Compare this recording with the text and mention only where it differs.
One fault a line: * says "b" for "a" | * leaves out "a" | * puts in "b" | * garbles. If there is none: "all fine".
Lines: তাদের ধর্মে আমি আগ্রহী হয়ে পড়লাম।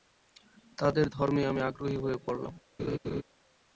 all fine